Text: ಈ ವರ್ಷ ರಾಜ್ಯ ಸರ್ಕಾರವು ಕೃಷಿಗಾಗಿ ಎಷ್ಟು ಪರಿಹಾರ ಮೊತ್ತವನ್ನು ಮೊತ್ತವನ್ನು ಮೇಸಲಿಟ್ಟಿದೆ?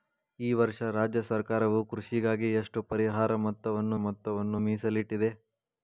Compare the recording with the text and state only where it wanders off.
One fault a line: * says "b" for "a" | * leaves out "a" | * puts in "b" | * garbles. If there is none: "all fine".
all fine